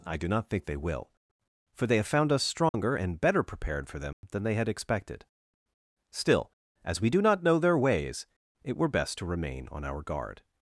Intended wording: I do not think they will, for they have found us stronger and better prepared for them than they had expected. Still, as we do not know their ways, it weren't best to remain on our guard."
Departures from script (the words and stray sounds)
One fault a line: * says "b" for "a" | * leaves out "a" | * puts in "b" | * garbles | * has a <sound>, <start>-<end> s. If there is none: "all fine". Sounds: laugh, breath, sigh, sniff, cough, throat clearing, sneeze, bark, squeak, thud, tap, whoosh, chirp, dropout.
* has a dropout, 2.7-2.7 s
* has a dropout, 4.1-4.2 s
* says "were" for "weren't"